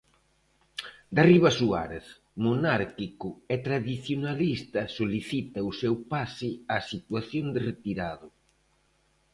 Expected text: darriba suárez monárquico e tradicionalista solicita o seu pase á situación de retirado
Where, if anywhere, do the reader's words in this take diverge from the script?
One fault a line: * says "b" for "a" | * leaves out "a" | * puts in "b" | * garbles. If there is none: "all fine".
all fine